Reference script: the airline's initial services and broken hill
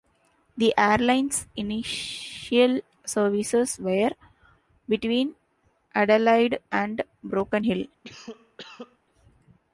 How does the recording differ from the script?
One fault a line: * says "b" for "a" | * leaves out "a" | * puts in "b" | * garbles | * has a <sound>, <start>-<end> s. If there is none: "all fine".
* puts in "were between adelaide"
* has a cough, 8.0-9.0 s